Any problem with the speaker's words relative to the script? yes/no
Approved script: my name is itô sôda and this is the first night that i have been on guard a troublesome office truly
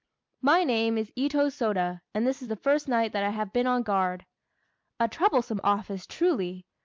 no